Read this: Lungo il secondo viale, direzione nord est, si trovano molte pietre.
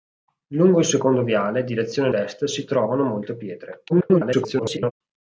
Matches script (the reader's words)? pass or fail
fail